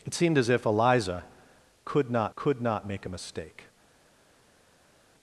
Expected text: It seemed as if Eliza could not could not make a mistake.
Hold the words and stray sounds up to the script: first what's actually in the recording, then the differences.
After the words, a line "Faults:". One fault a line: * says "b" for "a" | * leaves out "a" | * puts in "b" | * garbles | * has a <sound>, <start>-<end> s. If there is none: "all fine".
It seemed as if Eliza could not could not make a mistake.
Faults:
all fine